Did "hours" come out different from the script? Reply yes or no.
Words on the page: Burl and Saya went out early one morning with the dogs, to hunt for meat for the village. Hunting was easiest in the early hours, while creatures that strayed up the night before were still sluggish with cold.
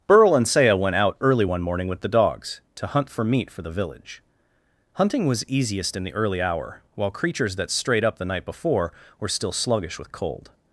yes